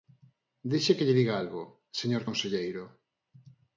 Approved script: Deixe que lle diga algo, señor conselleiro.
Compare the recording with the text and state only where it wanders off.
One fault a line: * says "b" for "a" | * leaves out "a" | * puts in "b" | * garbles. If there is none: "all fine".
all fine